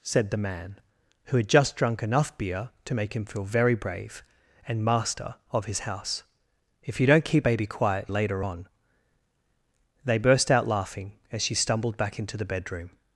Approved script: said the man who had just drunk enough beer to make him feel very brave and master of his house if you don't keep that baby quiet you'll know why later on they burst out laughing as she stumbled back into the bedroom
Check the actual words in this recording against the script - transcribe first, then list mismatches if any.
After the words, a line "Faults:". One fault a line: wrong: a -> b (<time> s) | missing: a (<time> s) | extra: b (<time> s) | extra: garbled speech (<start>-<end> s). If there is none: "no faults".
said the man who had just drunk enough beer to make him feel very brave and master of his house if you don't keep baby quiet later on they burst out laughing as she stumbled back into the bedroom
Faults:
missing: that (7.5 s)
missing: you'll know why (8.1 s)